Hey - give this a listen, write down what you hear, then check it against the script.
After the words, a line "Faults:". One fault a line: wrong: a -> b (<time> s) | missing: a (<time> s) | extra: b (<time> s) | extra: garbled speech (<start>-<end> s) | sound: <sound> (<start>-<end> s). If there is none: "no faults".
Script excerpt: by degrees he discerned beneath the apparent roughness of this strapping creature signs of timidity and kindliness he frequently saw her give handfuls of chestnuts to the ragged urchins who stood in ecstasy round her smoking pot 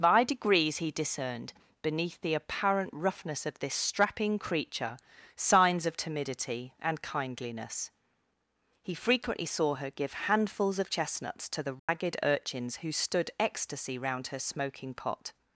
by degrees he discerned beneath the apparent roughness of this strapping creature signs of timidity and kindliness he frequently saw her give handfuls of chestnuts to the ragged urchins who stood ecstasy round her smoking pot
Faults:
sound: dropout (11.8-11.9 s)
missing: in (13.3 s)